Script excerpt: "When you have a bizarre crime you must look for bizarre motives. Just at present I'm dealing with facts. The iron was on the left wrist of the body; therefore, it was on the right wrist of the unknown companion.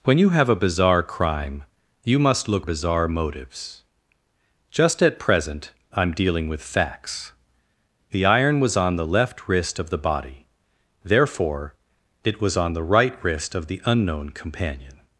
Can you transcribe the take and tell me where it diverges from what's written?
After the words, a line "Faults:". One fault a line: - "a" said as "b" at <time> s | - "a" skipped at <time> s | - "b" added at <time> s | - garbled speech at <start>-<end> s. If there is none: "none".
"When you have a bizarre crime you must look bizarre motives. Just at present I'm dealing with facts. The iron was on the left wrist of the body; therefore, it was on the right wrist of the unknown companion.
Faults:
- "for" skipped at 2.6 s